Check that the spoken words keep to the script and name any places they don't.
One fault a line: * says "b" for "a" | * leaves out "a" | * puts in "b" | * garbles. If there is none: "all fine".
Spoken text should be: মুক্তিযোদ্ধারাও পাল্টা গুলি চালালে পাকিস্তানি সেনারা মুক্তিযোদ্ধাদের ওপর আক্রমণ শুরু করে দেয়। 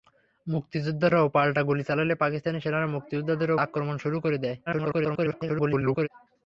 * leaves out "ওপর"
* garbles